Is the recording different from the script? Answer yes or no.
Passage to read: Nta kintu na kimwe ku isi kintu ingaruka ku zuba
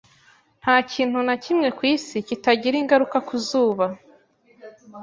yes